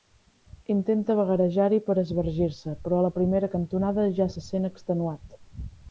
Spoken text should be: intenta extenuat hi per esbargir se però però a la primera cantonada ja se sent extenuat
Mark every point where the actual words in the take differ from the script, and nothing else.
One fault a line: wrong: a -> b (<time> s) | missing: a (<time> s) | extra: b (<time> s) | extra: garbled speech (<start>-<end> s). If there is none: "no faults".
wrong: extenuat -> vagarejar (1.2 s)
missing: però (3.0 s)